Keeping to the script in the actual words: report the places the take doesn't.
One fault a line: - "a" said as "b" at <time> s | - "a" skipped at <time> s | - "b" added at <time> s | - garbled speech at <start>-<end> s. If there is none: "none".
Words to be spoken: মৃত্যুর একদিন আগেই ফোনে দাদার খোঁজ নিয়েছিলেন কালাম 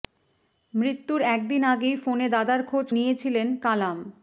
none